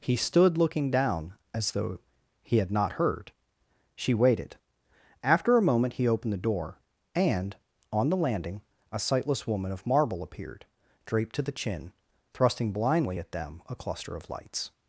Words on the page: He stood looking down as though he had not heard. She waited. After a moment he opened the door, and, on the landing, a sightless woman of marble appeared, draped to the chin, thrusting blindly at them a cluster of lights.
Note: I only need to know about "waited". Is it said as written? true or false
true